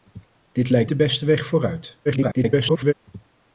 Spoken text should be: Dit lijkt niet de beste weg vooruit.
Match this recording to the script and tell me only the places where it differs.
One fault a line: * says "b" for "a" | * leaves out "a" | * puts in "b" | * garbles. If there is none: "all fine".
* leaves out "niet"
* garbles